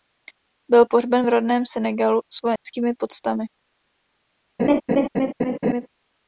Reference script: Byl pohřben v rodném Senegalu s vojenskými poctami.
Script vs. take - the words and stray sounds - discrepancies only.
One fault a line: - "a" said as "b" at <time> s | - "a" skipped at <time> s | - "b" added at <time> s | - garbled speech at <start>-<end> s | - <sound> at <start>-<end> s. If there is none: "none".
- dropout at 2.6-2.7 s
- laugh at 4.6-5.9 s